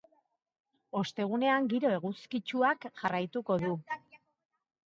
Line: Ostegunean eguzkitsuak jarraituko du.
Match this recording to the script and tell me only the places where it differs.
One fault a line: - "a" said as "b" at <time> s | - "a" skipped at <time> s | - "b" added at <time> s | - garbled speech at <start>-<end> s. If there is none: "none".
- "giro" added at 1.8 s